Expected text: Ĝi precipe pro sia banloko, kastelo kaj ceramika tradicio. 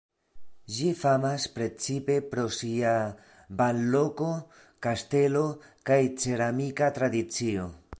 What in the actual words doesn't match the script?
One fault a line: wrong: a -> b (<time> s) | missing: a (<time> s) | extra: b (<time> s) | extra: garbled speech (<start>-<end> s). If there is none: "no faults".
extra: famas (1.0 s)